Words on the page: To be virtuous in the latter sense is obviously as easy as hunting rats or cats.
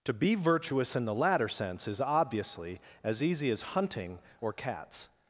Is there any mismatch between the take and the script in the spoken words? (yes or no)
yes